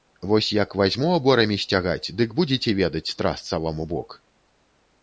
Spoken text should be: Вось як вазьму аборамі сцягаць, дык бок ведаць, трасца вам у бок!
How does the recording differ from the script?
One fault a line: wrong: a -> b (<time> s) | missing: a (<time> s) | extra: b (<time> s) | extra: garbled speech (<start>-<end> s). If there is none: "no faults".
wrong: бок -> будзеце (2.4 s)